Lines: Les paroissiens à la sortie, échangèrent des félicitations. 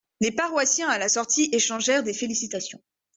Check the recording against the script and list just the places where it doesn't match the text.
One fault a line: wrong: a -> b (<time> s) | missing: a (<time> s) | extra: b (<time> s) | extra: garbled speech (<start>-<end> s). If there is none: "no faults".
no faults